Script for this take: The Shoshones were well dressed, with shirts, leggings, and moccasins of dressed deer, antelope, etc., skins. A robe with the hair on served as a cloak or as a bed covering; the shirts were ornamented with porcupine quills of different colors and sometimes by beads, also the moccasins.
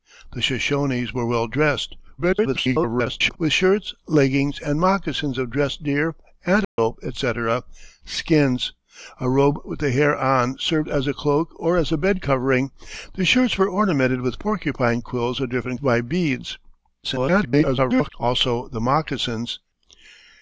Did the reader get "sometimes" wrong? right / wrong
wrong